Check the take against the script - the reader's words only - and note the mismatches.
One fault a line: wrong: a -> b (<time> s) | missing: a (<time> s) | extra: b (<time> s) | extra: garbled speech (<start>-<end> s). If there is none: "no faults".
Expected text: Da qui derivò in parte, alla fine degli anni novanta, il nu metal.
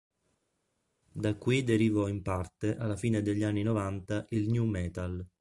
no faults